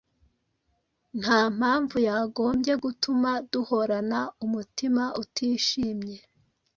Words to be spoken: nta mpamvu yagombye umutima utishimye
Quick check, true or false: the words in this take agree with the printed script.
false